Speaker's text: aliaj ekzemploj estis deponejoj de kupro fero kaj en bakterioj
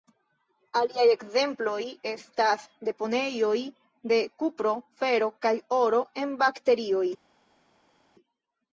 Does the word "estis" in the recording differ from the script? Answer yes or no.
yes